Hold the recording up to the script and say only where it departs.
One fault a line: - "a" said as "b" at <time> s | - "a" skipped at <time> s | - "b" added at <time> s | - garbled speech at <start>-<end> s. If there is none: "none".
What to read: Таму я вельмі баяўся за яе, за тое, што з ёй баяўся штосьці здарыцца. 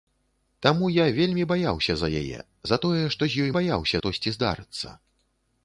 none